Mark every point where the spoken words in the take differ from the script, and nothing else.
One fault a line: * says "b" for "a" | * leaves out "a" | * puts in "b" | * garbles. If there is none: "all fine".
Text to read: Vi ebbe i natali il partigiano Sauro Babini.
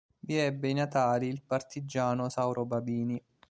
all fine